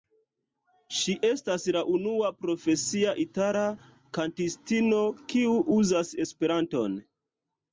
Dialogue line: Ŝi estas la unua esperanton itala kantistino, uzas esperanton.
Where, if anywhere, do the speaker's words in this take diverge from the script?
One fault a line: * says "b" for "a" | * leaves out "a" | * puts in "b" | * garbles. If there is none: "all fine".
* says "profesia" for "esperanton"
* puts in "kiu"